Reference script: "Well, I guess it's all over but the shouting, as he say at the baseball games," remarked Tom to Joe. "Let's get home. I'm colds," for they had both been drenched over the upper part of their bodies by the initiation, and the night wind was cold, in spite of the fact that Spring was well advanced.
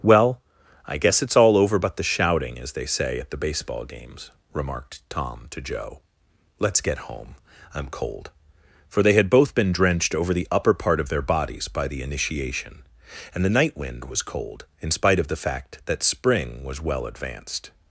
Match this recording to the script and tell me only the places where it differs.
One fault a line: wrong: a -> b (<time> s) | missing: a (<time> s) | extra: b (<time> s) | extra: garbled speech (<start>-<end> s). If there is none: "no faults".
wrong: he -> they (2.7 s)
wrong: colds -> cold (7.9 s)